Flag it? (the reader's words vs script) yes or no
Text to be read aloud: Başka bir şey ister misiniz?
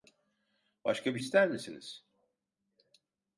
yes